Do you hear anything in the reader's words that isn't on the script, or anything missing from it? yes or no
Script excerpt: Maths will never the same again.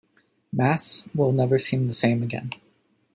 yes